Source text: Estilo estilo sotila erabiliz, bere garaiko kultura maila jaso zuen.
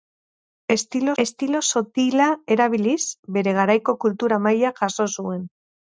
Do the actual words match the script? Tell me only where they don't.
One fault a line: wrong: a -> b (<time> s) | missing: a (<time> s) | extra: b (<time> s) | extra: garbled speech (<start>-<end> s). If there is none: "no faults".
no faults